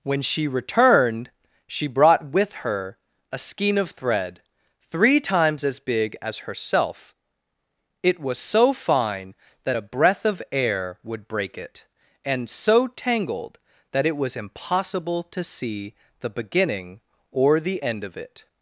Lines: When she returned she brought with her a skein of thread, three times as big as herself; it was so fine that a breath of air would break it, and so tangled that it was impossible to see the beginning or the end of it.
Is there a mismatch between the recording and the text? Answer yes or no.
no